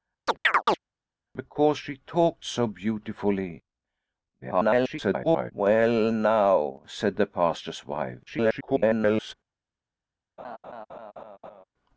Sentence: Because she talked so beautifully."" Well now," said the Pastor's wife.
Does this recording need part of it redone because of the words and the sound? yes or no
yes